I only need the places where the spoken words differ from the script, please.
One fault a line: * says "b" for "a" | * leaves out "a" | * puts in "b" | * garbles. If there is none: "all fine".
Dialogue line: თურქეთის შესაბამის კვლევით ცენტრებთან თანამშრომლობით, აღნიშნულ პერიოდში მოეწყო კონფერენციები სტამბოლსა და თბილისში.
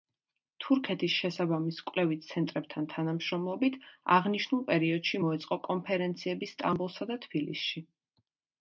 all fine